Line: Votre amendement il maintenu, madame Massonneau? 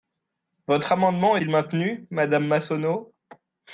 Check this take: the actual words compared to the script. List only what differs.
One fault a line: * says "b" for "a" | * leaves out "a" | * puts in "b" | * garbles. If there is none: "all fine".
all fine